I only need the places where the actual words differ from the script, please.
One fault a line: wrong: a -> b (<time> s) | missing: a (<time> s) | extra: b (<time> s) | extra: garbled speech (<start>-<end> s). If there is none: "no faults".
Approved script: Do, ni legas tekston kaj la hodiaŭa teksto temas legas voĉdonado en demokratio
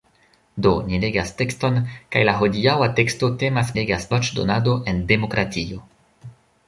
no faults